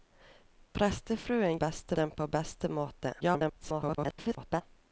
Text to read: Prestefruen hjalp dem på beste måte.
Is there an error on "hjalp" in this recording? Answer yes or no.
yes